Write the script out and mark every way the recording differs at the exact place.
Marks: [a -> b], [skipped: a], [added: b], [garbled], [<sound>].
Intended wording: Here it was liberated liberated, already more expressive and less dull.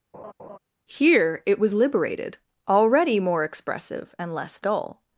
[laugh] Here it was liberated [skipped: liberated,] already more expressive and less dull.